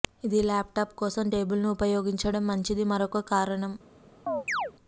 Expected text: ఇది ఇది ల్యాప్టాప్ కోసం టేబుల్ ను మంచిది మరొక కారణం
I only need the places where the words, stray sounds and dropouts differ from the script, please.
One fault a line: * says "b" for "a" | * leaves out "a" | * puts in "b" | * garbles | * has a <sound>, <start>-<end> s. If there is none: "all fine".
* leaves out "ఇది"
* puts in "ఉపయోగించడం"
* has a chirp, 4.3-4.7 s